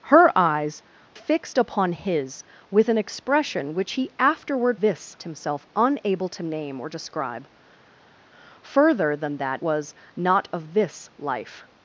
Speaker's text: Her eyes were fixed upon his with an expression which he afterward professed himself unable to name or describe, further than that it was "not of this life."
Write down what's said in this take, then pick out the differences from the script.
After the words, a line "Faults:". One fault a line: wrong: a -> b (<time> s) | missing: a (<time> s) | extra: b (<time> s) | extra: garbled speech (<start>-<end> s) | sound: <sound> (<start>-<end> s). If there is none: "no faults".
Her eyes fixed upon his with an expression which he afterward this himself unable to name or describe, further than that was "not of this life."
Faults:
missing: were (0.8 s)
wrong: professed -> this (4.8 s)
missing: it (9.6 s)